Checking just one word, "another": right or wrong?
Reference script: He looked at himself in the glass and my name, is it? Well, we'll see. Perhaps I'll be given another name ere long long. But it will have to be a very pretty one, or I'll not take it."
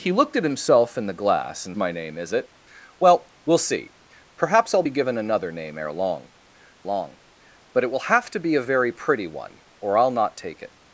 right